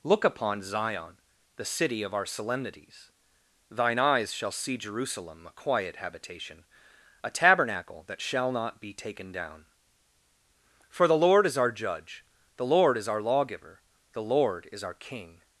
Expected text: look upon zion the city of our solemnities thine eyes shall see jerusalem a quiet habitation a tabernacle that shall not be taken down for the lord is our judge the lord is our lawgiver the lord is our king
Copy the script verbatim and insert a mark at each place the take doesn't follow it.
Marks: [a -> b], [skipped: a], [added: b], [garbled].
look upon zion the city of our solemnities thine eyes shall see jerusalem a quiet habitation a tabernacle that shall not be taken down for the lord is our judge the lord is our lawgiver the lord is our king